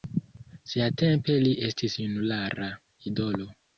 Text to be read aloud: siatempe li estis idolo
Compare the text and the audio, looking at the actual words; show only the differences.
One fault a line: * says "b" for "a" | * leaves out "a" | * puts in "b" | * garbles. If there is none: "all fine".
* puts in "junulara"